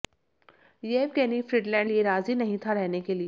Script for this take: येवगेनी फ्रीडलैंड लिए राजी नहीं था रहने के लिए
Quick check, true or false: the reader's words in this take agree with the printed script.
true